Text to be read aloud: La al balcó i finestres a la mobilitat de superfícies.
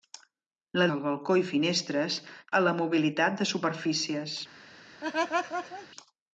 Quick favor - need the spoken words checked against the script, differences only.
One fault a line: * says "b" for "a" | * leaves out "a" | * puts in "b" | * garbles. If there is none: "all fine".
all fine